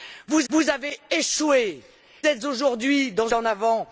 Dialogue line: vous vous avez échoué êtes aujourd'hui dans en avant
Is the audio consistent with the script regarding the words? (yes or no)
yes